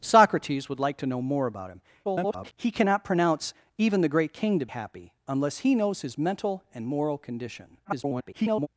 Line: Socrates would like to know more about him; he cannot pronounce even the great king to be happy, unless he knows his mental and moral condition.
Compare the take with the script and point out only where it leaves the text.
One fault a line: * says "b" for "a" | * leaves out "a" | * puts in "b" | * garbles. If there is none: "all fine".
* garbles
* leaves out "be"
* garbles